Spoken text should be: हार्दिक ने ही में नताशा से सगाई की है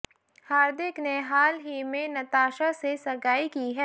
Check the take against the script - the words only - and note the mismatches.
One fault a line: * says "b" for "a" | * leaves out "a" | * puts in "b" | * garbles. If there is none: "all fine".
* puts in "हाल"